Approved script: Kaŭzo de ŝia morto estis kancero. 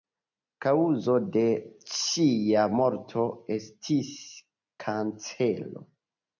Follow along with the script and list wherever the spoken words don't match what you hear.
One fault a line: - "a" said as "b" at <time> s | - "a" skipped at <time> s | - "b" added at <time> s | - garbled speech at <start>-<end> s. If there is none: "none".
none